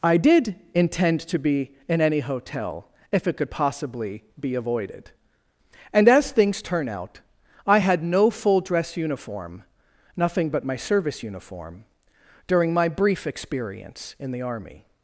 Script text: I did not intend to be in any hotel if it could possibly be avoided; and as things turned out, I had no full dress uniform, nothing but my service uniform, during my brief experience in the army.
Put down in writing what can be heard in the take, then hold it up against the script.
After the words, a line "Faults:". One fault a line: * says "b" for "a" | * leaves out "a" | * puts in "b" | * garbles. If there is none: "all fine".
I did intend to be in any hotel if it could possibly be avoided; and as things turn out, I had no full dress uniform, nothing but my service uniform, during my brief experience in the army.
Faults:
* leaves out "not"
* says "turn" for "turned"